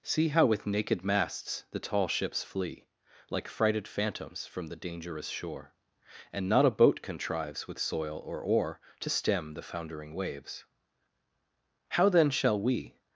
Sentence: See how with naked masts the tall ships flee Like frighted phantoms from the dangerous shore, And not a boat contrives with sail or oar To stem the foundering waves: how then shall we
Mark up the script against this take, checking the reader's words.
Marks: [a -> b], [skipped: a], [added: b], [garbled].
See how with naked masts the tall ships flee Like frighted phantoms from the dangerous shore, And not a boat contrives with [sail -> soil] or oar To stem the foundering waves: how then shall we